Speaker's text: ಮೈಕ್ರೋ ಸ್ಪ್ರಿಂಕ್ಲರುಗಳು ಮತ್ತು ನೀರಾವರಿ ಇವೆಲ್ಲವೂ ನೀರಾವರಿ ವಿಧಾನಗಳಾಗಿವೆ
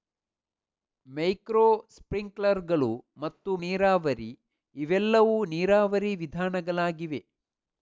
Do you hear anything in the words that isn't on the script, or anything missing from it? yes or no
no